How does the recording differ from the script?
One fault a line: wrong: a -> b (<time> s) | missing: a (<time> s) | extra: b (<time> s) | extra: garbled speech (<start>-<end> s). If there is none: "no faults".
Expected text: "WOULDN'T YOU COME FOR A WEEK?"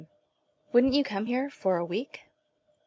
extra: HERE (1.2 s)